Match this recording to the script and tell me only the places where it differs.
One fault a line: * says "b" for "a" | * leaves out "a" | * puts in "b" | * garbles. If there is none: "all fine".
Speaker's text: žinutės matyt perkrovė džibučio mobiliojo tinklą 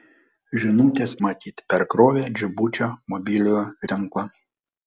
all fine